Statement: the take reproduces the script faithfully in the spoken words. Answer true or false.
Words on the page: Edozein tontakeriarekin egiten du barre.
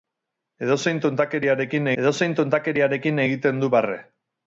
false